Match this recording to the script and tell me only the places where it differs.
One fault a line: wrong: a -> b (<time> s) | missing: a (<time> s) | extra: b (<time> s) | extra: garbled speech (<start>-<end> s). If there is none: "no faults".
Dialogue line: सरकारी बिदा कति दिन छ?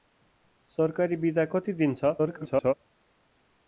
extra: garbled speech (2.2-2.7 s)